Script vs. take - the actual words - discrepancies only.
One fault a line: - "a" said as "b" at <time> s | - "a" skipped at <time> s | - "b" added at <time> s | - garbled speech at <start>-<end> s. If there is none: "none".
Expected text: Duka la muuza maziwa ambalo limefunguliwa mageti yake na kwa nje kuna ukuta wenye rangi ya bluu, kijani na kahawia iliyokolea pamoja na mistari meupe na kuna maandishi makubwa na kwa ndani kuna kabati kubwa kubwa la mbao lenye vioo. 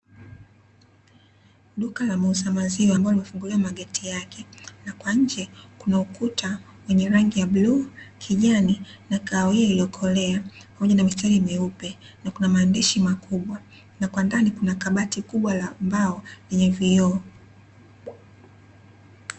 - "kubwa" skipped at 15.5 s